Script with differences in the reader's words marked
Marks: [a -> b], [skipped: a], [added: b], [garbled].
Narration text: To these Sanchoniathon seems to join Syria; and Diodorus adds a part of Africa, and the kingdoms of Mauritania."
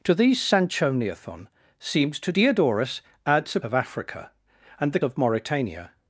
To these Sanchoniathon seems to [skipped: join Syria; and] Diodorus adds a [skipped: part] of Africa, and the [skipped: kingdoms] of Mauritania."